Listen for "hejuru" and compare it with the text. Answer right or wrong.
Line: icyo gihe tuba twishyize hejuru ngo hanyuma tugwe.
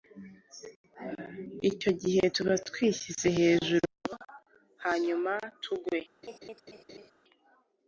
right